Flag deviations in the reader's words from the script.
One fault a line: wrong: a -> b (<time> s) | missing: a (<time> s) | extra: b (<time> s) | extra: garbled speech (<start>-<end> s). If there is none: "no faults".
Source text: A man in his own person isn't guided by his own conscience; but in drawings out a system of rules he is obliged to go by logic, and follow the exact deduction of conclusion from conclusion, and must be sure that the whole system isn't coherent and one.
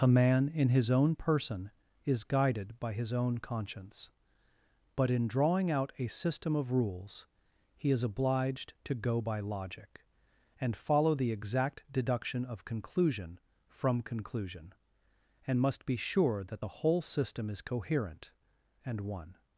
wrong: isn't -> is (2.0 s)
wrong: drawings -> drawing (5.3 s)
wrong: isn't -> is (17.5 s)